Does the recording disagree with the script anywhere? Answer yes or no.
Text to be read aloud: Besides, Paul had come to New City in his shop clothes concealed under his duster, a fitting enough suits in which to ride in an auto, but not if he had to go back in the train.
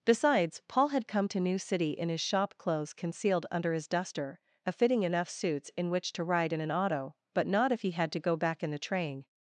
no